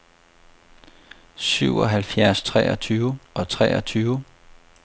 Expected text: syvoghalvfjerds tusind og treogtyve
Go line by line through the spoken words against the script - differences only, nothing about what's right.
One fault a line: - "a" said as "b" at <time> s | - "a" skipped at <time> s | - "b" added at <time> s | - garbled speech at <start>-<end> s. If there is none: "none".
- "tusind" said as "treogtyve" at 2.4 s